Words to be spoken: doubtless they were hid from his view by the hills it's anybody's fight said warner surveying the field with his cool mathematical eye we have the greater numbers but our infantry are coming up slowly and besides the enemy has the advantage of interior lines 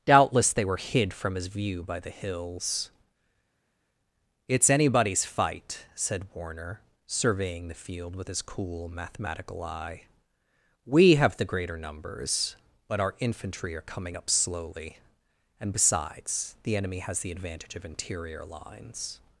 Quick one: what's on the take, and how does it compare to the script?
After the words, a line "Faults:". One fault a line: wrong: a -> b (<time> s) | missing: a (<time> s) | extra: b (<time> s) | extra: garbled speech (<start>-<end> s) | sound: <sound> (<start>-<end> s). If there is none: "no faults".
doubtless they were hid from his view by the hills it's anybody's fight said warner surveying the field with his cool mathematical eye we have the greater numbers but our infantry are coming up slowly and besides the enemy has the advantage of interior lines
Faults:
no faults